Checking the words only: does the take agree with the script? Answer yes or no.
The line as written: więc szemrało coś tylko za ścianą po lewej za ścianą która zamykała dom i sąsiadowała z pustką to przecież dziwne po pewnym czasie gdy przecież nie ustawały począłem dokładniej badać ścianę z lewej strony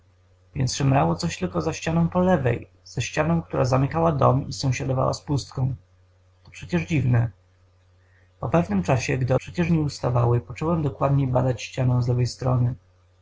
yes